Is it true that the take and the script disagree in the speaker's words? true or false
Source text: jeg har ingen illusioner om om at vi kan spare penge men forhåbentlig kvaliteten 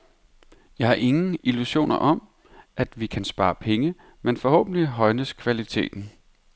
true